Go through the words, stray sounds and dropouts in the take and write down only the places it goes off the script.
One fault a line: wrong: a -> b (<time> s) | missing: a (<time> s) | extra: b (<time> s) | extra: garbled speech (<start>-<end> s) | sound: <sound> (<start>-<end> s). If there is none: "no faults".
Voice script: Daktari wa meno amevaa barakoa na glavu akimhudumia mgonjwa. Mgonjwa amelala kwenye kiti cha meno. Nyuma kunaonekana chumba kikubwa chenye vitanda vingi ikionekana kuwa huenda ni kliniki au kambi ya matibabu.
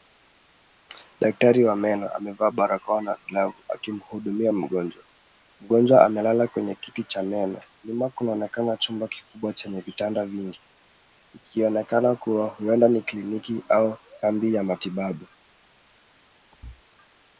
sound: thud (16.5-16.8 s)